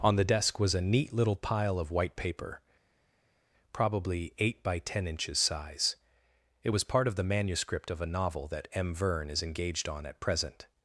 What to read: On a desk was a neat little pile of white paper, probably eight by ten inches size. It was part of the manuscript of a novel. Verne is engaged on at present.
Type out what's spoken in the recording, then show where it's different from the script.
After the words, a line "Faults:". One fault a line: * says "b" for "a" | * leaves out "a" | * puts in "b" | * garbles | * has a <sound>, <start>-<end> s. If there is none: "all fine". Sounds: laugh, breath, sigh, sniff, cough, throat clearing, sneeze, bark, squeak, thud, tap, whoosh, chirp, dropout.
On the desk was a neat little pile of white paper, probably eight by ten inches size. It was part of the manuscript of a novel that M. Verne is engaged on at present.
Faults:
* says "the" for "a"
* puts in "that M"